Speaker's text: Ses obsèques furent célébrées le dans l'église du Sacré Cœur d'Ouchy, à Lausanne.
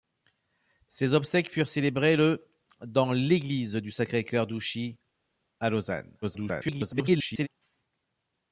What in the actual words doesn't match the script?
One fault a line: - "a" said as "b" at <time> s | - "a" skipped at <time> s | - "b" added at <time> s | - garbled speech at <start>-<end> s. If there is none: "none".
- garbled speech at 6.2-7.5 s